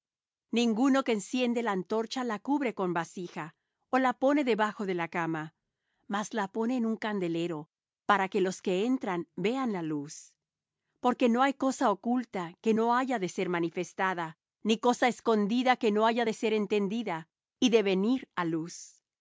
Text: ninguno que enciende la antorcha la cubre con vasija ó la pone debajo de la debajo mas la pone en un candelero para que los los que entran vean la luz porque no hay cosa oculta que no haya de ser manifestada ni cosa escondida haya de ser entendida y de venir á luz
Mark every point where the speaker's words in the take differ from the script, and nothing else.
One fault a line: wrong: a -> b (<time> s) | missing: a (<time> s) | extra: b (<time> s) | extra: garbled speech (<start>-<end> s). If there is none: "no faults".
wrong: debajo -> cama (5.1 s)
missing: los (8.6 s)
extra: que no (15.8 s)